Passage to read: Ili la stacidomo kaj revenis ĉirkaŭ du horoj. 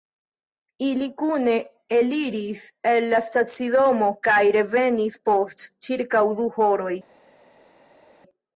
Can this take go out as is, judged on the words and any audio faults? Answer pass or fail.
fail